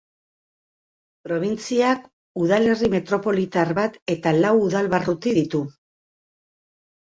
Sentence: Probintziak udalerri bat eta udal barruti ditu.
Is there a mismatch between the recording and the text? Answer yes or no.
yes